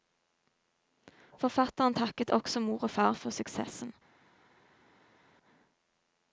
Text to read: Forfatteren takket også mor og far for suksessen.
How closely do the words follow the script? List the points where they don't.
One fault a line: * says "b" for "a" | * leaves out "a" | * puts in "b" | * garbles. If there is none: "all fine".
all fine